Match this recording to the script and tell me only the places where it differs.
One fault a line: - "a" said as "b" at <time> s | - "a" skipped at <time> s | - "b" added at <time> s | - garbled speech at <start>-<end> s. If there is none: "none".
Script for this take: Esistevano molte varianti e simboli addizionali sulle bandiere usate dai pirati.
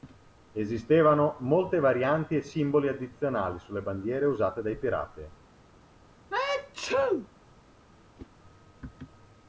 none